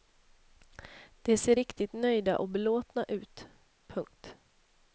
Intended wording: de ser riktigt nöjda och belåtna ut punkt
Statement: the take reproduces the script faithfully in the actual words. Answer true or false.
true